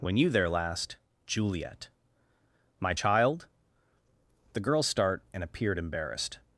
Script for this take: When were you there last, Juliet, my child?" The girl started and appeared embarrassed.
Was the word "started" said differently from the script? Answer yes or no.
yes